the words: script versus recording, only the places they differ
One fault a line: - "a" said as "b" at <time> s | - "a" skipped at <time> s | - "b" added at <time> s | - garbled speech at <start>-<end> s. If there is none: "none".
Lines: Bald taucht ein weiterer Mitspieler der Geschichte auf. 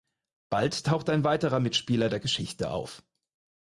none